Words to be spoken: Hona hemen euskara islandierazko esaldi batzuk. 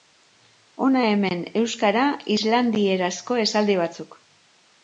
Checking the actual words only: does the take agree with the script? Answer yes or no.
yes